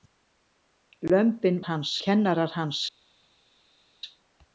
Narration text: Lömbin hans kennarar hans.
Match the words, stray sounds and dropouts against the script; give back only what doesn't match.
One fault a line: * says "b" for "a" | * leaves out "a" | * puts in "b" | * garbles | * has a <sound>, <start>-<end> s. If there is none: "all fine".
all fine